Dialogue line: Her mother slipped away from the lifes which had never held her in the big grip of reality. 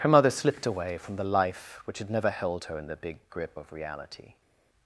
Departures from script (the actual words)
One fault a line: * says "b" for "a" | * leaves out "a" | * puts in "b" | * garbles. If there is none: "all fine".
* says "life" for "lifes"